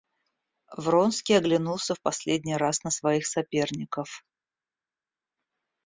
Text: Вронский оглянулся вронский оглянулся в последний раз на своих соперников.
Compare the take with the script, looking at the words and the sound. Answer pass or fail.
fail